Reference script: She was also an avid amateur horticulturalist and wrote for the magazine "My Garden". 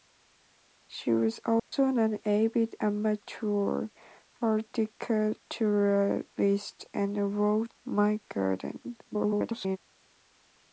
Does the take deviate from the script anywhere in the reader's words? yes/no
yes